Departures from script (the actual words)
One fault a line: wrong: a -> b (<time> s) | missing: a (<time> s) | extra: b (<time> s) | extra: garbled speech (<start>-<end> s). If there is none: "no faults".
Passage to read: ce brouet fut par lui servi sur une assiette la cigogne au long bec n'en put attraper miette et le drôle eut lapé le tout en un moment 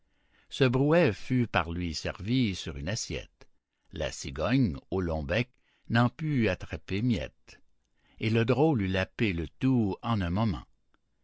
no faults